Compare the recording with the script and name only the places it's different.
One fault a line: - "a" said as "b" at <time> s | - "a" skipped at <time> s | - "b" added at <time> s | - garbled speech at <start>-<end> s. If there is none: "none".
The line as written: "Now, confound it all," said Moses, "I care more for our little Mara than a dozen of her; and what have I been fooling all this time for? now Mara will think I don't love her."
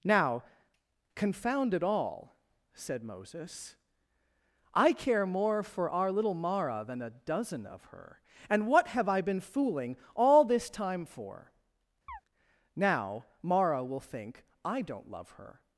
none